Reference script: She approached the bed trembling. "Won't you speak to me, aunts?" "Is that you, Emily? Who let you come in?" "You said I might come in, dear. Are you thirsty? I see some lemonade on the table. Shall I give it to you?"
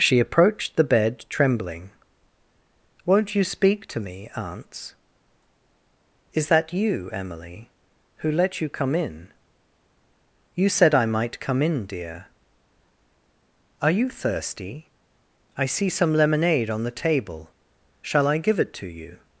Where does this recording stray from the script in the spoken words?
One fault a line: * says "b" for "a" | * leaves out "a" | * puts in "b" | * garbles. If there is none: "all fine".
all fine